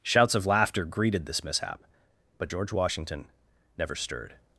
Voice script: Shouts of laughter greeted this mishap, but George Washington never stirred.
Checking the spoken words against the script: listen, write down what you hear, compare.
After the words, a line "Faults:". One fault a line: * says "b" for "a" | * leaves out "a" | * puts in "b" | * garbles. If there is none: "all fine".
Shouts of laughter greeted this mishap, but George Washington never stirred.
Faults:
all fine